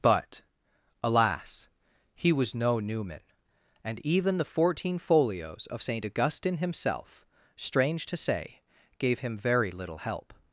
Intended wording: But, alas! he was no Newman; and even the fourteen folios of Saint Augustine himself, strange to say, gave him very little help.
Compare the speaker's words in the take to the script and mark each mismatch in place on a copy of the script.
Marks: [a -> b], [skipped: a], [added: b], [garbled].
But, alas! he was no Newman; and even the fourteen folios of Saint Augustine himself, strange to say, gave him very little help.